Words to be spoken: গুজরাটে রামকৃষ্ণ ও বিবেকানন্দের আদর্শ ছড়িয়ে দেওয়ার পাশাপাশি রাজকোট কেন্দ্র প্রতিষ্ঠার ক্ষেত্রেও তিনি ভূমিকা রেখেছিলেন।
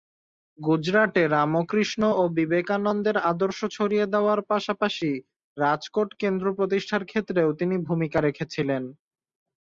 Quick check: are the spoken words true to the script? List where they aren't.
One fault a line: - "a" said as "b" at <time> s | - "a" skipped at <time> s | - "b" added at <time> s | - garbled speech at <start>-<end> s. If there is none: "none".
none